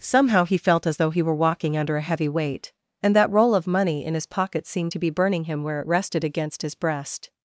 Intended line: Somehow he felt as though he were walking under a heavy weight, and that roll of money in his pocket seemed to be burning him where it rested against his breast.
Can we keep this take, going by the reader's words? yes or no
yes